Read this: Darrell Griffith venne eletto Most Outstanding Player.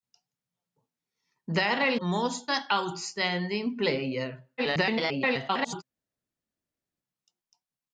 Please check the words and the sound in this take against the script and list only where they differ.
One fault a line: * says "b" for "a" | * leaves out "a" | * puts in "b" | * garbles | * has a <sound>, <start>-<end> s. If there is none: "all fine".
* leaves out "Griffith venne eletto"
* garbles